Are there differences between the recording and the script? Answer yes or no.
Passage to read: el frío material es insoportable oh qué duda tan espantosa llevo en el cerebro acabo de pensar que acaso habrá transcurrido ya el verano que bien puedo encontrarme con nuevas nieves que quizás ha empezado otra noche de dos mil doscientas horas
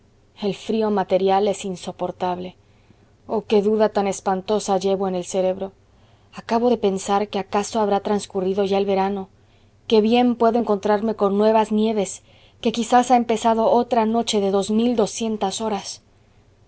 no